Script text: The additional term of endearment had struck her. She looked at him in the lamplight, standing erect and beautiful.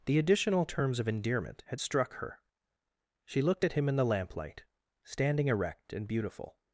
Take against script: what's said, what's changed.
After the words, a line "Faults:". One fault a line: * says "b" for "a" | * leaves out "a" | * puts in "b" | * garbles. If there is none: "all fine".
The additional terms of endearment had struck her. She looked at him in the lamplight, standing erect and beautiful.
Faults:
* says "terms" for "term"